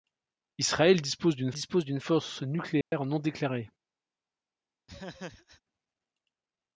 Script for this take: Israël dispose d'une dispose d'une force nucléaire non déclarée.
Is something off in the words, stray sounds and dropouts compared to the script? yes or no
yes